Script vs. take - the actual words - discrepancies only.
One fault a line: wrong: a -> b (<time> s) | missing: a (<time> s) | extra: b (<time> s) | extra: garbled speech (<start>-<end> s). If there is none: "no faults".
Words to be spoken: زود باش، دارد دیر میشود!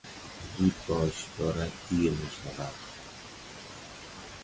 no faults